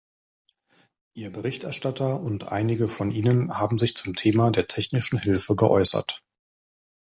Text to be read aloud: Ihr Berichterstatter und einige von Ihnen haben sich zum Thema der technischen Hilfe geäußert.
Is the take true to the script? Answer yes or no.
yes